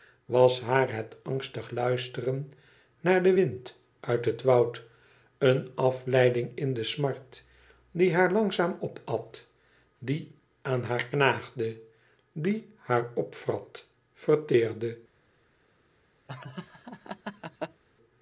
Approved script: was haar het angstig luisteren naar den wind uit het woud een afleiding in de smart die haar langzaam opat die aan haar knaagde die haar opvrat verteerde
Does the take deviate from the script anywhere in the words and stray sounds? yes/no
yes